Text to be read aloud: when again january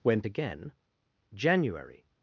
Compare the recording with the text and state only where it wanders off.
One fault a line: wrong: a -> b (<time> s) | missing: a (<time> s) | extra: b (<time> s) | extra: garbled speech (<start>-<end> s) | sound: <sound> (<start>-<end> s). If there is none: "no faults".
no faults